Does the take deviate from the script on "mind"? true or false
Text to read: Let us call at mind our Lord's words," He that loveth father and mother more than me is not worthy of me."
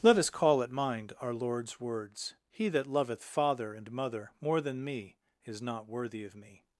false